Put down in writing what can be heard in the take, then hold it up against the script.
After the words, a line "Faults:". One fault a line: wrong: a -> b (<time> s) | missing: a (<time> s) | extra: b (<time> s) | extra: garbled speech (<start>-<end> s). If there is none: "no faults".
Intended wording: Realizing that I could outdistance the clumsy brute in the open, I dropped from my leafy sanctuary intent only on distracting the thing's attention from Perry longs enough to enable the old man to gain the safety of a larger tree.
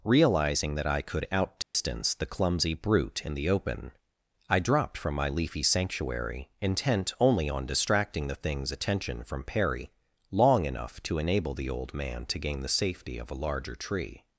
Realizing that I could outdistance the clumsy brute in the open, I dropped from my leafy sanctuary intent only on distracting the thing's attention from Perry long enough to enable the old man to gain the safety of a larger tree.
Faults:
wrong: longs -> long (10.3 s)